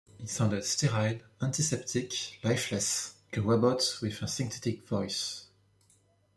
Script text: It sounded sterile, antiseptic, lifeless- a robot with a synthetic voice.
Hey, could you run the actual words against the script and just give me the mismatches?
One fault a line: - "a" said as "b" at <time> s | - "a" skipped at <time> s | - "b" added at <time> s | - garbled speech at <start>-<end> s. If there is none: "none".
none